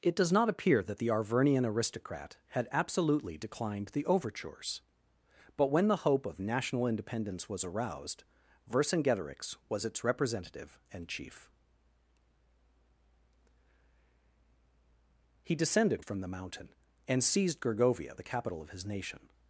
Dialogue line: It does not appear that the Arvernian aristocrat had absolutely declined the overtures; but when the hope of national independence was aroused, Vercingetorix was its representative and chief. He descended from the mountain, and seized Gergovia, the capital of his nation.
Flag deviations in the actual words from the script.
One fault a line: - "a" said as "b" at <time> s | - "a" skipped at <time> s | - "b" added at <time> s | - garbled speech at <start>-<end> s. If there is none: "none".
none